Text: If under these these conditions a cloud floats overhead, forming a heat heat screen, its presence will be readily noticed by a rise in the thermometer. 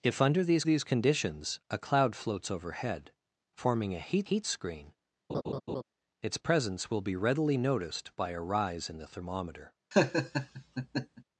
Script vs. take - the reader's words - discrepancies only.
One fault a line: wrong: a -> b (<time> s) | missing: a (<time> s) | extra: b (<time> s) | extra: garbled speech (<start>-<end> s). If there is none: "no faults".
no faults